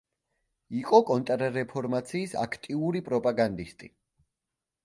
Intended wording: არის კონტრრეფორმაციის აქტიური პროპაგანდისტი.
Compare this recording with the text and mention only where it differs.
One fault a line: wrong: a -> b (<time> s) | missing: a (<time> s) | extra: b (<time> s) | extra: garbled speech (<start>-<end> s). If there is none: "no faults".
wrong: არის -> იყო (0.8 s)